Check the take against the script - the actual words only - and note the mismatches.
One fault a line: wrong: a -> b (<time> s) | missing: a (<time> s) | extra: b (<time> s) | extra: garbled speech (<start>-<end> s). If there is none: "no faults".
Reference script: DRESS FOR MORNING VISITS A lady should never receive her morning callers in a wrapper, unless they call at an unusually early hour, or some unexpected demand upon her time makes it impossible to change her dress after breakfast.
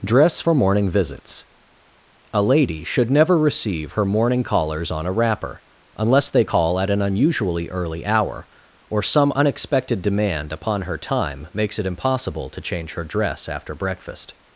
wrong: in -> on (4.9 s)